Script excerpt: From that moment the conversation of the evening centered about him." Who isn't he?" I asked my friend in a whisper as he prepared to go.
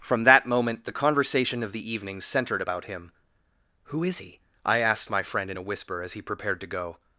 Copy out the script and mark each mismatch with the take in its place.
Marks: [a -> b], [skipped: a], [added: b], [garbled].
From that moment the conversation of the evening centered about him." Who [isn't -> is] he?" I asked my friend in a whisper as he prepared to go.